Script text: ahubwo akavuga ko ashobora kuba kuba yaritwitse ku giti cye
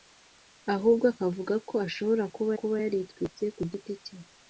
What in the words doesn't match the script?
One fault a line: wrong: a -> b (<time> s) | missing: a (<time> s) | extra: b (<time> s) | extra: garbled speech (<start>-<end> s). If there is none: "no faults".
no faults